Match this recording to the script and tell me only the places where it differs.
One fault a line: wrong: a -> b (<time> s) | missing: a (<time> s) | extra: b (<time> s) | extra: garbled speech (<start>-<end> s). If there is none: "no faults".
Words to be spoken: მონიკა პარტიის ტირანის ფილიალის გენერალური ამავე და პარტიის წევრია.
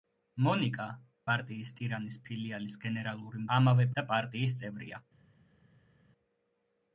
no faults